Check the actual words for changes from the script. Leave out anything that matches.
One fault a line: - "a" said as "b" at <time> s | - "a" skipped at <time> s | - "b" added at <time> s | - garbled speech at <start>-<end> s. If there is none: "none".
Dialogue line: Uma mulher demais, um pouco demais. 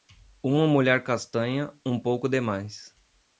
- "demais" said as "castanha" at 1.0 s